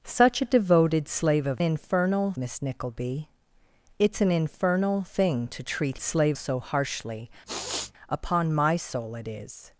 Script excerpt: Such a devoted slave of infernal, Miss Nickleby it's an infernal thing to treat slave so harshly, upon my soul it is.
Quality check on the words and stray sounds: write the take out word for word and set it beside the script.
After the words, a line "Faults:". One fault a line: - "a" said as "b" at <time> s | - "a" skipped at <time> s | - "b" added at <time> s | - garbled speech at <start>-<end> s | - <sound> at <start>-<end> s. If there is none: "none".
Such a devoted slave of infernal, Miss Nickleby it's an infernal thing to treat slave so harshly, upon my soul it is.
Faults:
- sniff at 7.5-7.9 s